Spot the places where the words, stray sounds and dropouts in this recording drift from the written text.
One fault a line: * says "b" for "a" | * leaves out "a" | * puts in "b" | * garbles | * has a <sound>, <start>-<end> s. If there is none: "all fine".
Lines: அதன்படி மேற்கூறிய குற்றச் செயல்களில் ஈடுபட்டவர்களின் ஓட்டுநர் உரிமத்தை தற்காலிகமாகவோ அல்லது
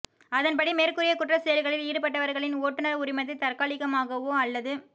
all fine